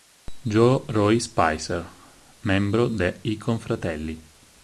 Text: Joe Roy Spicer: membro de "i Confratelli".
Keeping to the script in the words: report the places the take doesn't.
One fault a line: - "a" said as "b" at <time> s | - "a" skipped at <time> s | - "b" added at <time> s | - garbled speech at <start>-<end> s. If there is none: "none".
none